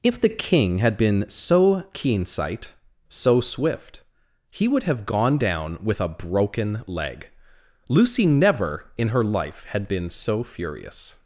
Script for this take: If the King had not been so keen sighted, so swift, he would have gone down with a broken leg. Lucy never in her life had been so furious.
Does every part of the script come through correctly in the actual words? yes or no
no